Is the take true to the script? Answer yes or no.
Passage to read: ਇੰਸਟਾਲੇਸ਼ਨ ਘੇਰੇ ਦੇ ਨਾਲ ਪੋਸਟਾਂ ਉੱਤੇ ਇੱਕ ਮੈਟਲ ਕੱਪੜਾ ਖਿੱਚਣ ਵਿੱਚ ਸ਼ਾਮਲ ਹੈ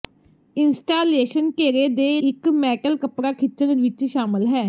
no